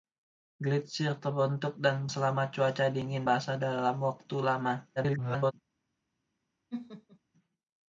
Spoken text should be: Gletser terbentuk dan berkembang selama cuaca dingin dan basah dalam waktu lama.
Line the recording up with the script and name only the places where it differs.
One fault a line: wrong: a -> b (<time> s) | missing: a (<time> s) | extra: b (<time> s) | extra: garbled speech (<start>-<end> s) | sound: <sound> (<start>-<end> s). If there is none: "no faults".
missing: berkembang (2.1 s)
missing: dan (3.3 s)
extra: garbled speech (5.0-5.5 s)
sound: laugh (6.7-7.2 s)